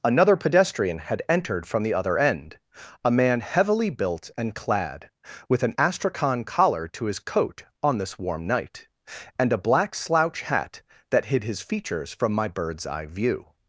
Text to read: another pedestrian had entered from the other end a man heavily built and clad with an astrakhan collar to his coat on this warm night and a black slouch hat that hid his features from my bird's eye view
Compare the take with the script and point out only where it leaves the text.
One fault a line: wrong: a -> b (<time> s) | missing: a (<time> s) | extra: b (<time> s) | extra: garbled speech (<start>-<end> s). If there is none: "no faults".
no faults